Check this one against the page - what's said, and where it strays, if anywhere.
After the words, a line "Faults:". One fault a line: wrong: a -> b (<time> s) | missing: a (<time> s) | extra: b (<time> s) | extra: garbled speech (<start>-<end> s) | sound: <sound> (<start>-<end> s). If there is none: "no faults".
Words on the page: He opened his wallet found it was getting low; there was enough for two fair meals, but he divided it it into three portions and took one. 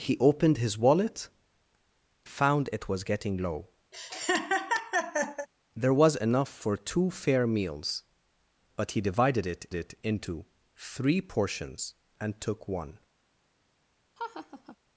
He opened his wallet found it was getting low; there was enough for two fair meals, but he divided it it into three portions and took one.
Faults:
sound: laugh (3.9-5.5 s)
sound: laugh (14.2-14.8 s)